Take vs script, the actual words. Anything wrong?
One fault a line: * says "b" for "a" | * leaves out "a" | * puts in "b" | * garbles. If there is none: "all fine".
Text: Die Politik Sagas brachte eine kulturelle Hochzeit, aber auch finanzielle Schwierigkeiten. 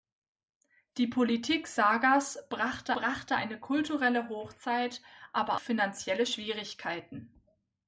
* puts in "brachte"
* leaves out "auch"